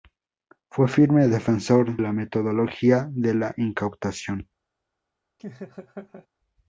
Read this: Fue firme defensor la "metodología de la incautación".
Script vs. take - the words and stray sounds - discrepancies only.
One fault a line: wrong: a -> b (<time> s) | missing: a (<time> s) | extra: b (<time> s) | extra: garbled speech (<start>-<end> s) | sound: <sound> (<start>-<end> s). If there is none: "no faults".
sound: laugh (5.4-6.3 s)